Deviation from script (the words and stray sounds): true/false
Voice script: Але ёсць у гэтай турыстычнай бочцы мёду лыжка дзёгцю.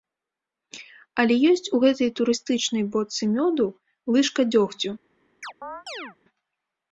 true